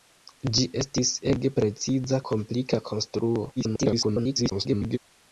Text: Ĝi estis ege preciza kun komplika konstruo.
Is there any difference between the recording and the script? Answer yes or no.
yes